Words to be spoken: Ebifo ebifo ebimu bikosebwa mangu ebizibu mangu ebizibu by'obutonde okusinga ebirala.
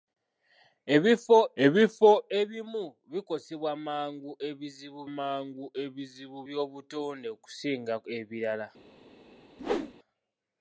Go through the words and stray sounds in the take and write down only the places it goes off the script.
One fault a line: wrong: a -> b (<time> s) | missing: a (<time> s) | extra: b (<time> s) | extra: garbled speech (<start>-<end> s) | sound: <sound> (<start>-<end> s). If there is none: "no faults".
sound: whoosh (9.6-9.9 s)